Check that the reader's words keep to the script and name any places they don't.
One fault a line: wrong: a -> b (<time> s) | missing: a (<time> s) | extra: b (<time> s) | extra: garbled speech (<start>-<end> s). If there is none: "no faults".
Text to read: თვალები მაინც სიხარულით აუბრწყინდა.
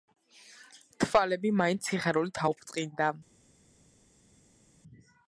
no faults